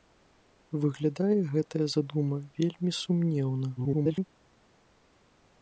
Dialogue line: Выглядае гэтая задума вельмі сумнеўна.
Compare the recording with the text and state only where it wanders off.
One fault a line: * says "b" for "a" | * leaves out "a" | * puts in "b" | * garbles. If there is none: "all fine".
* garbles